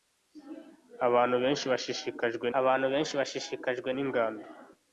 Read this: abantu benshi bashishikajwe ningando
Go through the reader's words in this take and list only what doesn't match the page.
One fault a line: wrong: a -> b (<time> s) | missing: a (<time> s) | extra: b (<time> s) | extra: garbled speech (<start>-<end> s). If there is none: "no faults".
extra: abantu benshi bashishikajwe (2.6 s)